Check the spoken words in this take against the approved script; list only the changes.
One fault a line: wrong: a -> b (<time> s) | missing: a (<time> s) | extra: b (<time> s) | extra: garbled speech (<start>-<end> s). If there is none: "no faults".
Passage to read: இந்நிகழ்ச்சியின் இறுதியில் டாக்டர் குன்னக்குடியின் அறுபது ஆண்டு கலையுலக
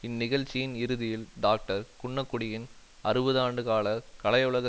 extra: கால (3.6 s)